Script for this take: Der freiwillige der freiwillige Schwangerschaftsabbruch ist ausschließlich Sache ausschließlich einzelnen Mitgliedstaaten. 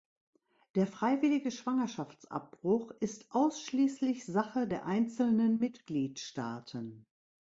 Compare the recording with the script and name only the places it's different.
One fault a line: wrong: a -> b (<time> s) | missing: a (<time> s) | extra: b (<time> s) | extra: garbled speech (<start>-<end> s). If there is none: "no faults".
missing: der freiwillige (1.5 s)
wrong: ausschließlich -> der (4.7 s)